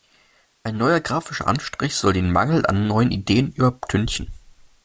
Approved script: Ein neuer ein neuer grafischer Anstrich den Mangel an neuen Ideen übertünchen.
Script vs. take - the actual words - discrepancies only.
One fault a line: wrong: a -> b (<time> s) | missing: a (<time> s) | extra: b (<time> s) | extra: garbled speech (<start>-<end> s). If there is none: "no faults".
missing: ein neuer (1.0 s)
extra: soll (1.9 s)